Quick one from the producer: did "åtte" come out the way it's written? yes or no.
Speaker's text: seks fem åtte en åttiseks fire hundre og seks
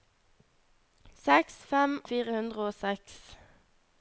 no